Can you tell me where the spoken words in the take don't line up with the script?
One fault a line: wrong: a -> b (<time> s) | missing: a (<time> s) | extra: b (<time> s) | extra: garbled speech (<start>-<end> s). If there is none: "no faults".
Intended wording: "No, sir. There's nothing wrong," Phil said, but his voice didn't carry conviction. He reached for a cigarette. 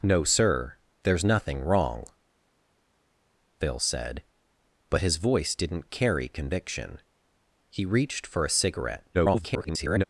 extra: garbled speech (9.1-10.0 s)